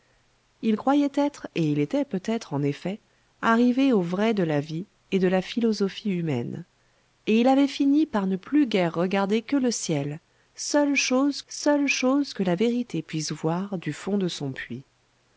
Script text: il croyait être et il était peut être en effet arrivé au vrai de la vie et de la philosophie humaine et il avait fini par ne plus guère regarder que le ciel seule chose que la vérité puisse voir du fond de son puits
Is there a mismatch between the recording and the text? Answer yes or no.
yes